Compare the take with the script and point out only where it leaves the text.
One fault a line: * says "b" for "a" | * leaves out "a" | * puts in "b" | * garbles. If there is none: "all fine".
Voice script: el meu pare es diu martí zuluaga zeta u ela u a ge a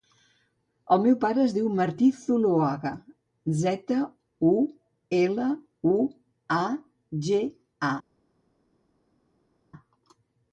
all fine